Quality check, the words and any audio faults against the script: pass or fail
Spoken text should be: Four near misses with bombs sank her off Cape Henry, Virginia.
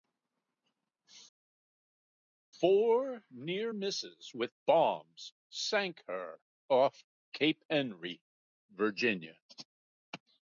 pass